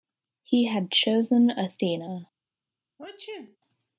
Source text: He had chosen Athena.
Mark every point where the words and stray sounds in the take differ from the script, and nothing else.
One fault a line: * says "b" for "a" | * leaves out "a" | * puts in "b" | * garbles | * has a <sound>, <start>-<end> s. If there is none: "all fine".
* has a sneeze, 3.0-3.6 s